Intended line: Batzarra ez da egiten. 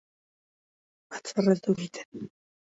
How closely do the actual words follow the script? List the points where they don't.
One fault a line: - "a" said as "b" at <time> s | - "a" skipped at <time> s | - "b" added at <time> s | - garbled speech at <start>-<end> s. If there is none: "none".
none